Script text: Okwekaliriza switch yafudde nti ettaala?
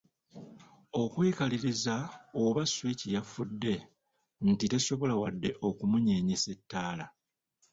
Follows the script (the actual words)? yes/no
no